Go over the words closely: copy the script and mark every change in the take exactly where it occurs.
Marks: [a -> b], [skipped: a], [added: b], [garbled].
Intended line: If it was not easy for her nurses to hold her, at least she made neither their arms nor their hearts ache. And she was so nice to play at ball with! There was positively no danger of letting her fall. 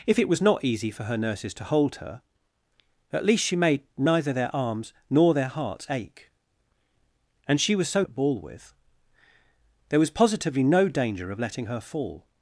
If it was not easy for her nurses to hold her, at least she made neither their arms nor their hearts ache. And she was so [skipped: nice to play] at ball with! There was positively no danger of letting her fall.